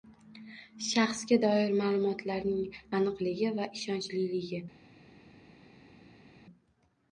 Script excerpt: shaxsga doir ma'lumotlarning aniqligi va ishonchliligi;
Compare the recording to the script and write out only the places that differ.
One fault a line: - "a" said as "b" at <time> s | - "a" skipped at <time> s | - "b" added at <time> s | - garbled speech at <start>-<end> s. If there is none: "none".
none